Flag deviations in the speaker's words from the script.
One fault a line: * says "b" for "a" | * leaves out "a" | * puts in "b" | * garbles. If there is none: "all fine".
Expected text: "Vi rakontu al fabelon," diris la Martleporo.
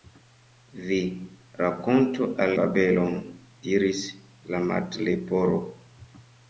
all fine